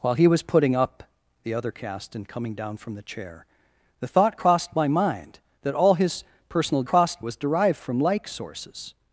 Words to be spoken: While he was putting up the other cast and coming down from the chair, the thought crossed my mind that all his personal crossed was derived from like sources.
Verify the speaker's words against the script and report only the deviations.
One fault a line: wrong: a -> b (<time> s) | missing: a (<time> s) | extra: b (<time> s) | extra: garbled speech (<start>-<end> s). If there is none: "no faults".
no faults